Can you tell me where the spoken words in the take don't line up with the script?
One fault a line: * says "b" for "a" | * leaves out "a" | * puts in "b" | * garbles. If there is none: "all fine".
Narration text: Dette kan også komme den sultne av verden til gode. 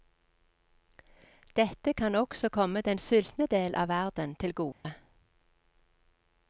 * puts in "del"